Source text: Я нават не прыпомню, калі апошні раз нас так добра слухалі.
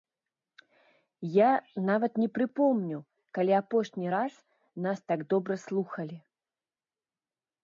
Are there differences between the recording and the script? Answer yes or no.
no